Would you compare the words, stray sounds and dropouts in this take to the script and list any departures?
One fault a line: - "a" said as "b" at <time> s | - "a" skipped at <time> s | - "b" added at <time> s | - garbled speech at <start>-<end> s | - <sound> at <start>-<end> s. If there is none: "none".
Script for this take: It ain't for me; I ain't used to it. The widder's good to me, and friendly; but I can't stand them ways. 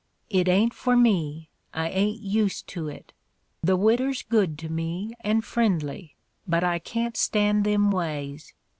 none